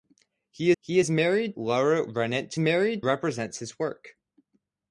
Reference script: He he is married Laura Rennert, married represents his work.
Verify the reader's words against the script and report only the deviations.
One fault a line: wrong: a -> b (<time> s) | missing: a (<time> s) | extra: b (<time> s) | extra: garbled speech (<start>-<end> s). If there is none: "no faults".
no faults